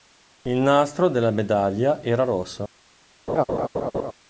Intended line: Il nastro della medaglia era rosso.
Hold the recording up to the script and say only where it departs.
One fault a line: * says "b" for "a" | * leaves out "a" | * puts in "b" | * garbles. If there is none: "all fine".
all fine